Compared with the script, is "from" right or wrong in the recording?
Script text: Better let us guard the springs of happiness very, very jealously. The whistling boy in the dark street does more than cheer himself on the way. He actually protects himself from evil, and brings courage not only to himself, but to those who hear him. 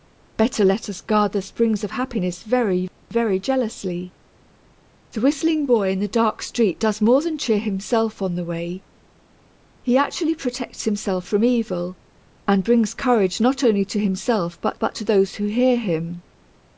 right